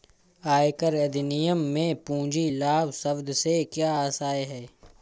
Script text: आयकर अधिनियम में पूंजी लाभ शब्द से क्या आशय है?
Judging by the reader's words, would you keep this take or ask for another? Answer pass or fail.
pass